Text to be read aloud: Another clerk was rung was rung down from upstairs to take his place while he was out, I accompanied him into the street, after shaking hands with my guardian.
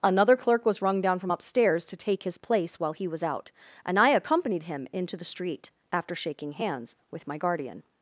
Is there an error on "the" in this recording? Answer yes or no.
no